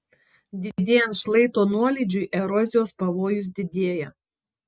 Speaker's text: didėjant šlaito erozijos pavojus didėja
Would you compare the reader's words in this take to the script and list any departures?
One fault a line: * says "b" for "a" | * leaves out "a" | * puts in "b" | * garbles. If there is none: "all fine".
* puts in "nuolydžiui"